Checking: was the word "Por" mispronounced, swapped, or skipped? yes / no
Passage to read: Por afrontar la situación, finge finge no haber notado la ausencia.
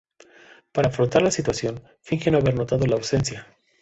yes